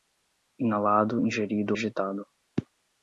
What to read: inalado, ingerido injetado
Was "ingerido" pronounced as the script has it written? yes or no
yes